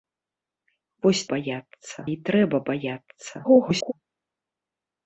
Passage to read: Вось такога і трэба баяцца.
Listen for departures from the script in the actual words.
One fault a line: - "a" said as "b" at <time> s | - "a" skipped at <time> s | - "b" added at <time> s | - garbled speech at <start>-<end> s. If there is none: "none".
- "такога" said as "баяцца" at 1.4 s
- garbled speech at 3.4-3.9 s